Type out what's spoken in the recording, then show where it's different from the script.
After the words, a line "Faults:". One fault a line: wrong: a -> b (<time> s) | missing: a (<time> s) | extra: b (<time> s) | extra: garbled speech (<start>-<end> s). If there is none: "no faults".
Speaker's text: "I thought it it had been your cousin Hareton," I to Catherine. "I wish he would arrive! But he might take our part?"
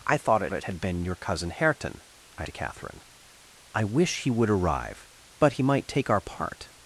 "I thought it it had been your cousin Hareton," I to Catherine. "I wish he would arrive! But he might take our part?"
Faults:
no faults